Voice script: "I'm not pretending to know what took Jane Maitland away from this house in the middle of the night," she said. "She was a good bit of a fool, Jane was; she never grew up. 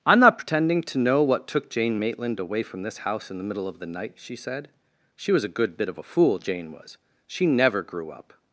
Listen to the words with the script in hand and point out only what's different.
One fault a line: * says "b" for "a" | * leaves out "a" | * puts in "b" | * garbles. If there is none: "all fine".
all fine